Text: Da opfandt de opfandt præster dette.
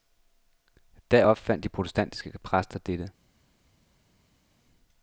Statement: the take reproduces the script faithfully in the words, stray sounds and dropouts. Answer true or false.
false